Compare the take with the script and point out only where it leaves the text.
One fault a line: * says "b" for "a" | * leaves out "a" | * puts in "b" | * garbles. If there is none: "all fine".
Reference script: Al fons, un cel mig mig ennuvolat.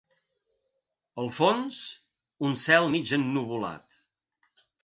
* leaves out "mig"